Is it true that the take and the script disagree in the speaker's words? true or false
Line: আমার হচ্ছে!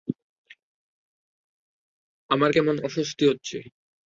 true